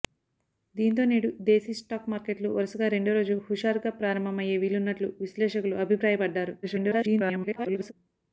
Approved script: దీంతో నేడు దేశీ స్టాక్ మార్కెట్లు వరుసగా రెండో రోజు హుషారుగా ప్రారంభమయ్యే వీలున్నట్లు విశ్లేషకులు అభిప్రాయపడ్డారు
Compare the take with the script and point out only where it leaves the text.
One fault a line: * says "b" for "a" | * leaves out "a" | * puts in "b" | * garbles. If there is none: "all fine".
* garbles